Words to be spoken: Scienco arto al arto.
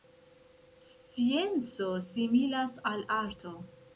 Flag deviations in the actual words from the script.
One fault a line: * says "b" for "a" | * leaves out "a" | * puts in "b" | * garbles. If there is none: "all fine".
* says "similas" for "arto"